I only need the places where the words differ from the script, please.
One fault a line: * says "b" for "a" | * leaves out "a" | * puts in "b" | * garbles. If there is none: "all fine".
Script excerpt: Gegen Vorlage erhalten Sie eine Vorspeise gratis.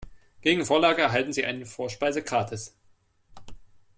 all fine